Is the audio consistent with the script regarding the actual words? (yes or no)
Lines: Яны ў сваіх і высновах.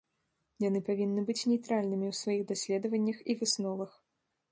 no